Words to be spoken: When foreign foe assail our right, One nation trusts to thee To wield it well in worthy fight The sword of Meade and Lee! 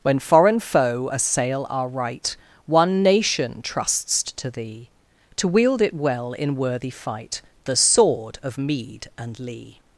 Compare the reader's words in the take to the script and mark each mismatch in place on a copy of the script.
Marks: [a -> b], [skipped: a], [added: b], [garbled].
When foreign foe assail our right, One nation trusts to thee To wield it well in worthy fight The sword of Meade and Lee!